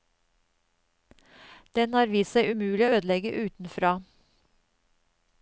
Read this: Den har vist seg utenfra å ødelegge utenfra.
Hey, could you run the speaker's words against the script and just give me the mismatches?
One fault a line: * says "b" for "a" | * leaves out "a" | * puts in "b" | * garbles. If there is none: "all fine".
* says "umulig" for "utenfra"